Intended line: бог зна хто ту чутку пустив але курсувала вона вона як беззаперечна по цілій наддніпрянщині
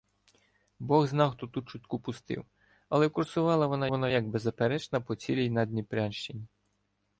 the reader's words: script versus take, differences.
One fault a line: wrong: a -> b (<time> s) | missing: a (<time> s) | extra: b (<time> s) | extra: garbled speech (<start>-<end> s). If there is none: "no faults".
no faults